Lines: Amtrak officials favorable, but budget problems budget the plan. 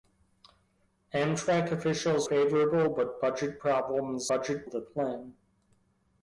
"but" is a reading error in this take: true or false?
false